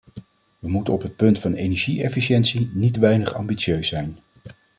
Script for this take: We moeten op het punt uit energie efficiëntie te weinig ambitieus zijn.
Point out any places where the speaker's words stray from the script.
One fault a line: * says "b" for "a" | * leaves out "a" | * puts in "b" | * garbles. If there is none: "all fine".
* says "van" for "uit"
* puts in "niet"